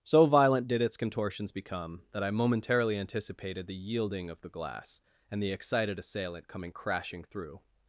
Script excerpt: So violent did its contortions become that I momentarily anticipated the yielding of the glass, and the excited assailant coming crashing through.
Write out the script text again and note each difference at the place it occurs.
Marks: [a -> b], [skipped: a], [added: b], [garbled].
So violent did its contortions become that I momentarily anticipated the yielding of the glass, and the excited assailant coming crashing through.